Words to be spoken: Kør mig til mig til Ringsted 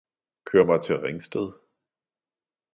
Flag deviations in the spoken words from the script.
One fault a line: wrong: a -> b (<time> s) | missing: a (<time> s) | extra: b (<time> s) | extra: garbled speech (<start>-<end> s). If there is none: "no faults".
missing: mig til (1.0 s)